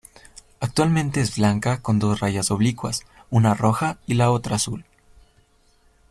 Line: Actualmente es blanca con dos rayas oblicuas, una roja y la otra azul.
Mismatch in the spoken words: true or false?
false